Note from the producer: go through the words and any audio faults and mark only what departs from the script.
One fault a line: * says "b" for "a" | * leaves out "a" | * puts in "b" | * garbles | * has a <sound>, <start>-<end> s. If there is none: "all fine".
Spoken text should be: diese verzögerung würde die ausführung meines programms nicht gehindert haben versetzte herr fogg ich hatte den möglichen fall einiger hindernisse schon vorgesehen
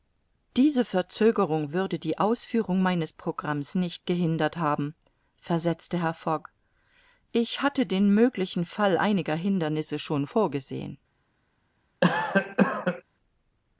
* has a cough, 12.0-13.0 s